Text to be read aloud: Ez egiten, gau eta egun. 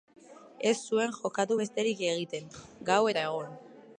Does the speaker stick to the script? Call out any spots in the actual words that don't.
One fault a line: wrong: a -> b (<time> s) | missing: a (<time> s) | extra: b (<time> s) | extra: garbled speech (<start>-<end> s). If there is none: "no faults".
extra: zuen jokatu besterik (0.9 s)